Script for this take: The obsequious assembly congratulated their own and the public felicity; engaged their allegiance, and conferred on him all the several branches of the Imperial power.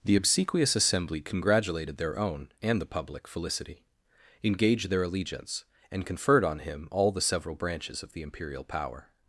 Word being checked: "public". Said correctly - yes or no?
yes